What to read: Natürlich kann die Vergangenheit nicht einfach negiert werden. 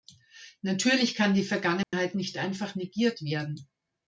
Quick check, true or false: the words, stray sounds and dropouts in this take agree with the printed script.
false